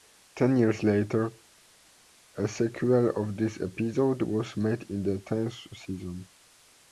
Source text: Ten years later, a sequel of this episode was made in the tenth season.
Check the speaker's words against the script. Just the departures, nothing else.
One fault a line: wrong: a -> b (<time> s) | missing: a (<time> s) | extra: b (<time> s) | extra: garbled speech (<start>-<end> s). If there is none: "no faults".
no faults